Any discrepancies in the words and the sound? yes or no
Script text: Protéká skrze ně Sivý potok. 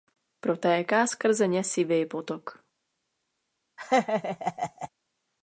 yes